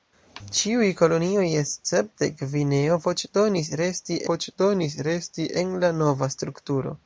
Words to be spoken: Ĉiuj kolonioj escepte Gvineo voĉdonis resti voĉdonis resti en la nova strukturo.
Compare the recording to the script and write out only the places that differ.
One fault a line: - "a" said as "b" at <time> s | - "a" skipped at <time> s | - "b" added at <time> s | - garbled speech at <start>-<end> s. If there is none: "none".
none